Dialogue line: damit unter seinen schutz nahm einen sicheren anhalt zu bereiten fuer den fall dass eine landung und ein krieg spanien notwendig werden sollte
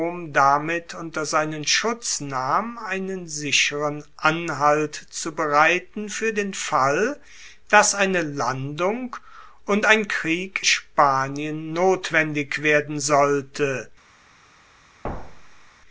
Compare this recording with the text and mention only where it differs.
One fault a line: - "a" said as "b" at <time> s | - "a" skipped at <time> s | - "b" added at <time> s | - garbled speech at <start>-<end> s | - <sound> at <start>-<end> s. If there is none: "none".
- thud at 15.0-15.7 s